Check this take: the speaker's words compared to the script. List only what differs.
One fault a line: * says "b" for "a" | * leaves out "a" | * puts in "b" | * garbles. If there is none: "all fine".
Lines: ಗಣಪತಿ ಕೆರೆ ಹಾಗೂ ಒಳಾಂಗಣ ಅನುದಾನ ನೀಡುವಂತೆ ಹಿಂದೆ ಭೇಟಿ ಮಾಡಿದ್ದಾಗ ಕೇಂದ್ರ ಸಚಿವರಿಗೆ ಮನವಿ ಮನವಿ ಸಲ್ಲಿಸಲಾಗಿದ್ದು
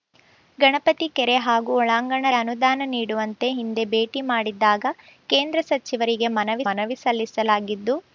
all fine